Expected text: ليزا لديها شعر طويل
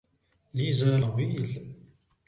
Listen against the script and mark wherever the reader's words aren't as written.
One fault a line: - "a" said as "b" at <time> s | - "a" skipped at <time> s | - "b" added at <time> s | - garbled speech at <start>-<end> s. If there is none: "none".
- "لديها شعر" skipped at 1.0 s